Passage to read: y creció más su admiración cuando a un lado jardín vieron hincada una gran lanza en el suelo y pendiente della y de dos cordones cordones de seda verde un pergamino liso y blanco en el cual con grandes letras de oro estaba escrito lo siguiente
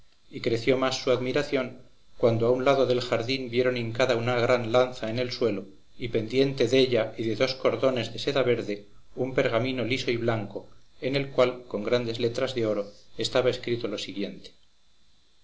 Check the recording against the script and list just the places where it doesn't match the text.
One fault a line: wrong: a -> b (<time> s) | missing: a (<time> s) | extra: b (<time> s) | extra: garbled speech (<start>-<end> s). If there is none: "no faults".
extra: del (2.9 s)
missing: cordones (8.1 s)